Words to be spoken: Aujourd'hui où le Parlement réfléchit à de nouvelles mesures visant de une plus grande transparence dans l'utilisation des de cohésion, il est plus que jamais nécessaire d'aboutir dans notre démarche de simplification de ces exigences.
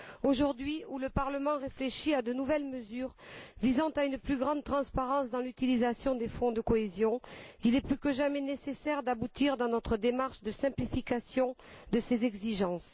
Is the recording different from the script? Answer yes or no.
yes